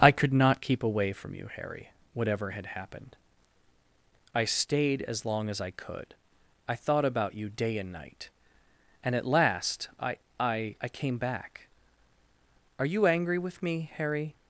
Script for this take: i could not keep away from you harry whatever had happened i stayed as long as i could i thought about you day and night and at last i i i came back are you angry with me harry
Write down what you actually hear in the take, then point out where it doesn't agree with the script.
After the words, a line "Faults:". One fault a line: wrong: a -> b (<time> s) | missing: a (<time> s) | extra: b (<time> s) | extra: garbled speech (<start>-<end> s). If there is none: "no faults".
i could not keep away from you harry whatever had happened i stayed as long as i could i thought about you day and night and at last i i i came back are you angry with me harry
Faults:
no faults